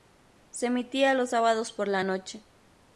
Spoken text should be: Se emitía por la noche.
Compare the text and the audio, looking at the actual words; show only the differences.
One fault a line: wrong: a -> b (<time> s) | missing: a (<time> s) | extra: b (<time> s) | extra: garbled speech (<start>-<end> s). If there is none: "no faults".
extra: los sábados (1.1 s)